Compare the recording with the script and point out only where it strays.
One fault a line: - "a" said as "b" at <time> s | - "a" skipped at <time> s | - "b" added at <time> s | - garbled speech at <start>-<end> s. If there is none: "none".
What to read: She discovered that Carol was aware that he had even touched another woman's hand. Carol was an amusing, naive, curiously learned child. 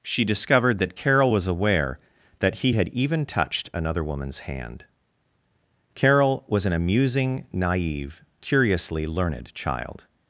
none